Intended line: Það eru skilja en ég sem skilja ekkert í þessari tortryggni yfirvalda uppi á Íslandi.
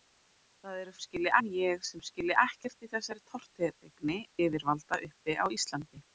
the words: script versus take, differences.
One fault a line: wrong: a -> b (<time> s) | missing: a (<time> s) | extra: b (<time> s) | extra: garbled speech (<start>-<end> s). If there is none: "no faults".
no faults